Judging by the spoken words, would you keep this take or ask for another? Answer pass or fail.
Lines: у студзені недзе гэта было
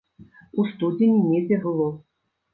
fail